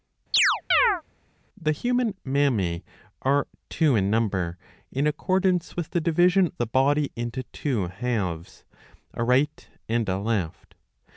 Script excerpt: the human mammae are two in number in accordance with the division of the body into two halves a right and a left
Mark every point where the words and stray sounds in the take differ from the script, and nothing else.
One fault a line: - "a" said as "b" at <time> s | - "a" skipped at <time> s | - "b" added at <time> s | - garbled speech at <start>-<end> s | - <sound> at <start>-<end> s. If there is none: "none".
- chirp at 0.3-1.0 s
- "of" skipped at 6.5 s